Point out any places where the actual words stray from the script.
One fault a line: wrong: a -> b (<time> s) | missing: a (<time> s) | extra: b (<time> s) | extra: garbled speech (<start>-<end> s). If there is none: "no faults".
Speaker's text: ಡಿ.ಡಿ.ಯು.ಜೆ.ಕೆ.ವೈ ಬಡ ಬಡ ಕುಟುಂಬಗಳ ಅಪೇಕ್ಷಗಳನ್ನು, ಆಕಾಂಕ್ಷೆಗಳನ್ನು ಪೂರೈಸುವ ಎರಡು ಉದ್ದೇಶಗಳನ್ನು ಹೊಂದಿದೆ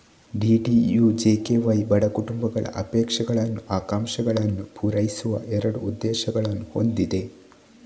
missing: ಬಡ (2.0 s)